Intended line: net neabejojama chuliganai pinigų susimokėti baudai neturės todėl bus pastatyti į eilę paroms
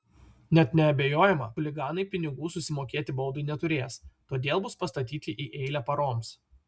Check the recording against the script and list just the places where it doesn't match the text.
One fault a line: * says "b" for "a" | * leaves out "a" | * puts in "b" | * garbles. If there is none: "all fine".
all fine